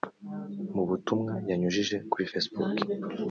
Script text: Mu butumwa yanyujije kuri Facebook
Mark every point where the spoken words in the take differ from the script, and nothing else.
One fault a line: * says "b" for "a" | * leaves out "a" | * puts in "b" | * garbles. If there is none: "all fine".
all fine